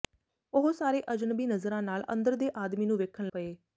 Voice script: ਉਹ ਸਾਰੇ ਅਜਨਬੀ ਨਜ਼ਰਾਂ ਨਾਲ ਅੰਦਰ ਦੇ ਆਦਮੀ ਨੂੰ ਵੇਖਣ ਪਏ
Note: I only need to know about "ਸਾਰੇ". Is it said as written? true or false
true